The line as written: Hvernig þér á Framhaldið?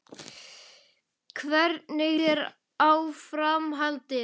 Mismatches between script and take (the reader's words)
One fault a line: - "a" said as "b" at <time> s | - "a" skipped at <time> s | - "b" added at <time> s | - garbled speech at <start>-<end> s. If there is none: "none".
none